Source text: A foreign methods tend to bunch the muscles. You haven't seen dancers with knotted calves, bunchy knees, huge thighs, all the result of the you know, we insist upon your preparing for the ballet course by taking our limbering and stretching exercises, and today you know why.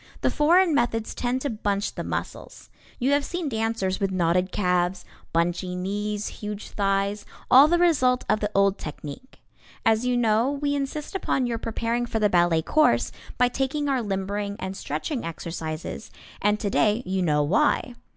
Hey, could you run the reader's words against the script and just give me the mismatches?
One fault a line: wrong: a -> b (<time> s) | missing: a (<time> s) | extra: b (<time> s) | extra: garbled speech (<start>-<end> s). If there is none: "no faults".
wrong: A -> The (0.2 s)
wrong: haven't -> have (3.1 s)
extra: old technique As (8.5 s)